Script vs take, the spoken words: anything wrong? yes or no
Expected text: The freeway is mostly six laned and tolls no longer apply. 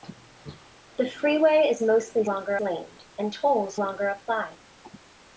yes